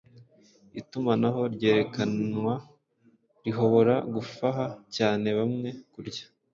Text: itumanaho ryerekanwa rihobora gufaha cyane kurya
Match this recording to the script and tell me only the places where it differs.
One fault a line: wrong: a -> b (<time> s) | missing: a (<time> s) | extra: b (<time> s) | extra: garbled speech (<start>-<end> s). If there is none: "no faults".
extra: bamwe (5.4 s)